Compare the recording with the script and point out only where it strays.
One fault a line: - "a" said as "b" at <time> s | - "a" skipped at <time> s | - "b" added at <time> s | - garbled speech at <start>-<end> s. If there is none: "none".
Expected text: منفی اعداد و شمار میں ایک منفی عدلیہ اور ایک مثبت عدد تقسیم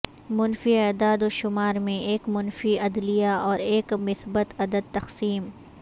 none